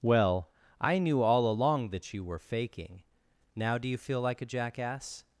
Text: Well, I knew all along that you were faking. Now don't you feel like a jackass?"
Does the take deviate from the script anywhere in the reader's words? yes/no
yes